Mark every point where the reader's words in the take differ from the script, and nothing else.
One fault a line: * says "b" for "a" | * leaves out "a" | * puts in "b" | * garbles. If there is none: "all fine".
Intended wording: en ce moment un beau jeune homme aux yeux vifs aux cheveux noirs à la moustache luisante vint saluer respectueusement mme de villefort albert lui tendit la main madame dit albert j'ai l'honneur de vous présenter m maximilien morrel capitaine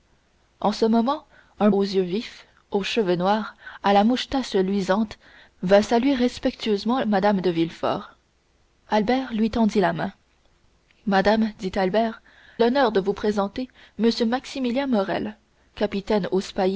* leaves out "beau jeune homme"
* leaves out "j'ai"